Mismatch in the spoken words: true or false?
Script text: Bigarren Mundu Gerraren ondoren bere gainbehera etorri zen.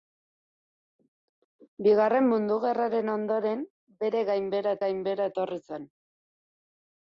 true